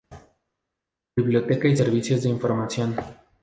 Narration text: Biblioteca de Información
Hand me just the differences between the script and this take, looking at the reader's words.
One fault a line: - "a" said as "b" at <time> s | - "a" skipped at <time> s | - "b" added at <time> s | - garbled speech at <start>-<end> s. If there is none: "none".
- "y Servicios" added at 1.7 s